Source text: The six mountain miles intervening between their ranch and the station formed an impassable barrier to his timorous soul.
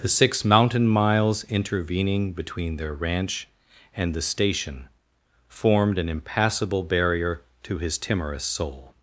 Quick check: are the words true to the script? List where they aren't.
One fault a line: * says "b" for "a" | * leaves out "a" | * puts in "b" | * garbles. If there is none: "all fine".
all fine